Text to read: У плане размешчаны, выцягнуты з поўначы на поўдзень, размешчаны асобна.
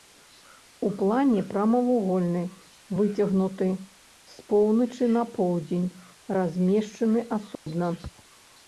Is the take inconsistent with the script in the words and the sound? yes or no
yes